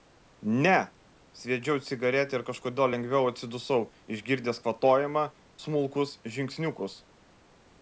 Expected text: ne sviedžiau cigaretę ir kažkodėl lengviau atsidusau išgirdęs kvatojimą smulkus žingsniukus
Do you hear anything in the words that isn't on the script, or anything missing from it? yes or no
no